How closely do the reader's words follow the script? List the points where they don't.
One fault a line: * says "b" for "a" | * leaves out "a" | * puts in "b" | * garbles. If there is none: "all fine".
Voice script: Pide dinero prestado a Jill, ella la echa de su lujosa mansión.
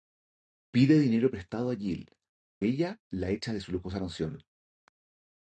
all fine